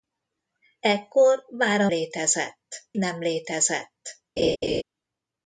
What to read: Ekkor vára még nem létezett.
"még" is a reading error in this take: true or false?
true